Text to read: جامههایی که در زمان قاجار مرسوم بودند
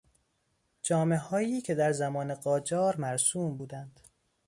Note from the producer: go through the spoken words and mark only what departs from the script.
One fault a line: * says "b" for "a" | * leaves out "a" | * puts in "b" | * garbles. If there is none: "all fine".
all fine